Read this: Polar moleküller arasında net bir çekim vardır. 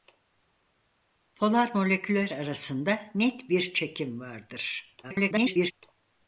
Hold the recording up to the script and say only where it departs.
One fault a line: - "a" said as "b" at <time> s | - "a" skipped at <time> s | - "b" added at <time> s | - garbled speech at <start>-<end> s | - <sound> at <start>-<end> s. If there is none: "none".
- garbled speech at 5.0-5.7 s